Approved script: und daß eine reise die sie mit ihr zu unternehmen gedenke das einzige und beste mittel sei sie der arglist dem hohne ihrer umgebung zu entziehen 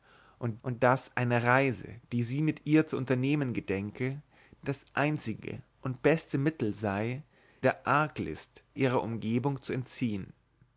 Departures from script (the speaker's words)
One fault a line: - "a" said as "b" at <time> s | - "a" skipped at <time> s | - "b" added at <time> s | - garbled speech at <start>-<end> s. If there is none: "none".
- "und" added at 0.6 s
- "sie" skipped at 7.2 s
- "dem hohne" skipped at 8.6 s